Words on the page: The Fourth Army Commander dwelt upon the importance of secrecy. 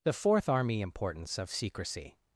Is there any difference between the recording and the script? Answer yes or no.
yes